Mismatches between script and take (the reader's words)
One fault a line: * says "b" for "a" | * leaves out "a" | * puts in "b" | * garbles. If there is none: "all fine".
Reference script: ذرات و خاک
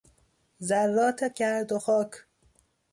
* puts in "گرد"